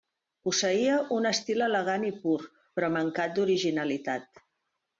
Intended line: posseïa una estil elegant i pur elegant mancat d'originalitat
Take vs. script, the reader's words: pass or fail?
fail